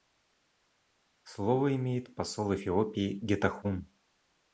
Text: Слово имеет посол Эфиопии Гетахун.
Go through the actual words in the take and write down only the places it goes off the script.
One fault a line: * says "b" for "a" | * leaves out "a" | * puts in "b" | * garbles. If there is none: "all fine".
all fine